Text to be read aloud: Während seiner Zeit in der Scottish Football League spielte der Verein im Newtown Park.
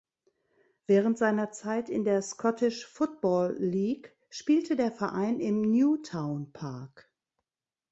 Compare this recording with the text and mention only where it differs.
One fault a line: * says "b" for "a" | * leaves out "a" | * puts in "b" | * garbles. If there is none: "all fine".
all fine